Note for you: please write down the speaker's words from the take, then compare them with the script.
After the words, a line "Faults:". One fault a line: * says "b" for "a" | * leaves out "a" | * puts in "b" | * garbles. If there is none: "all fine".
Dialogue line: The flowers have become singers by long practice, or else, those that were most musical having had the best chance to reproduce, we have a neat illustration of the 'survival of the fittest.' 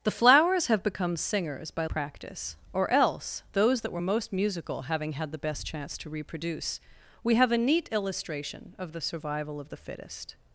The flowers have become singers by practice, or else, those that were most musical having had the best chance to reproduce, we have a neat illustration of the 'survival of the fittest.'
Faults:
* leaves out "long"